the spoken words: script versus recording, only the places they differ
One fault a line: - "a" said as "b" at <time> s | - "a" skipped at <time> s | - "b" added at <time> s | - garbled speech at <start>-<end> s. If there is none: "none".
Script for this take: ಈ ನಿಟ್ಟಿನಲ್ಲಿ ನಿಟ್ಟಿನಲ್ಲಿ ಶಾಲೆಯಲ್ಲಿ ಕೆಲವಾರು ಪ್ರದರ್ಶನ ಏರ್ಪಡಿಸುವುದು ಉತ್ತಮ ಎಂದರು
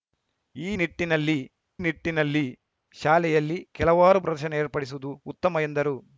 none